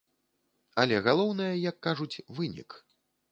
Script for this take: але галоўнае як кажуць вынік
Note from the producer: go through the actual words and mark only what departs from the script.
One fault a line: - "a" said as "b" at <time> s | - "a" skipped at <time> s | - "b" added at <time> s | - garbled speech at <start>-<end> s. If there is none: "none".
none